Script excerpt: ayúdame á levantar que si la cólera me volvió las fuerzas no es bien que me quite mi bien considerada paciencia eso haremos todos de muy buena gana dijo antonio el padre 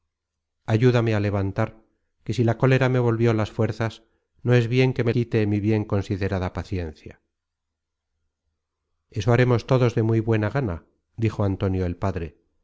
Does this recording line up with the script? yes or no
yes